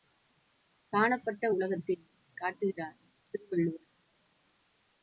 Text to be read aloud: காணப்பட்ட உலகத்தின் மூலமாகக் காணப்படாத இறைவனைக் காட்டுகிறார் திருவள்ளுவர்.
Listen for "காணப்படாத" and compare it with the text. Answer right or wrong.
wrong